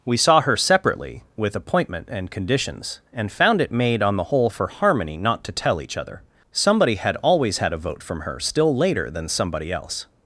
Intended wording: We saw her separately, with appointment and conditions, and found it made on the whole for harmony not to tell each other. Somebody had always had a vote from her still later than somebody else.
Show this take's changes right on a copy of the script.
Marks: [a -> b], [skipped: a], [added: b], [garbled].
We saw her separately, with appointment and conditions, and found it made on the whole for harmony not to tell each other. Somebody had always had a vote from her still later than somebody else.